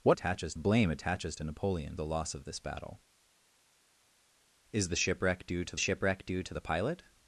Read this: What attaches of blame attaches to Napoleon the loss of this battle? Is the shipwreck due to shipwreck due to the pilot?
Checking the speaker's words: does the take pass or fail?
pass